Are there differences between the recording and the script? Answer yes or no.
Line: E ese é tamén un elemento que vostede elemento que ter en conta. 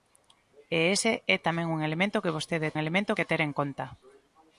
no